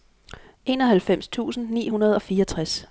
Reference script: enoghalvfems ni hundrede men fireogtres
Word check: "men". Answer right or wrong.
wrong